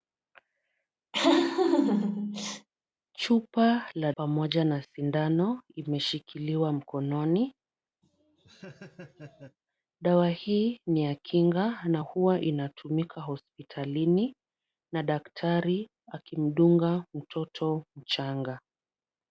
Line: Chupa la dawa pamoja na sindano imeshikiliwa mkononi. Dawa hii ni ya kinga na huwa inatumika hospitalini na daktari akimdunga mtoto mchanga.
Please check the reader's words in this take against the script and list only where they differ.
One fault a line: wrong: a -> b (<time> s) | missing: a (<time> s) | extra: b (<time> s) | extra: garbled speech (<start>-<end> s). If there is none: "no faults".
missing: dawa (4.1 s)